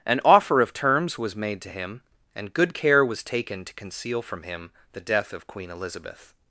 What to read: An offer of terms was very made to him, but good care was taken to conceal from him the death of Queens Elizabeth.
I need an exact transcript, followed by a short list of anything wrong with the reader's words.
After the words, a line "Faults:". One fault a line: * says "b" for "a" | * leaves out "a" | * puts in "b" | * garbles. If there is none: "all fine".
An offer of terms was made to him, and good care was taken to conceal from him the death of Queen Elizabeth.
Faults:
* leaves out "very"
* says "and" for "but"
* says "Queen" for "Queens"